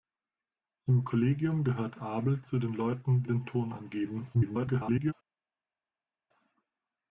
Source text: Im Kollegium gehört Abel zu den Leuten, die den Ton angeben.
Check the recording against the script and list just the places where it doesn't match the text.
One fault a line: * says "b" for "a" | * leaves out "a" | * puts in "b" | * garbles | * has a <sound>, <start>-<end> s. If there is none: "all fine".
* leaves out "die"
* garbles